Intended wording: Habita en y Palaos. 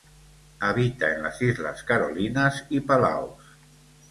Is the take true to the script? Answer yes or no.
no